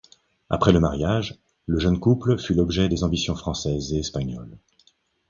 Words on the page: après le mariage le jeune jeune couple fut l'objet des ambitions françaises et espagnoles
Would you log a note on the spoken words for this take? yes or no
yes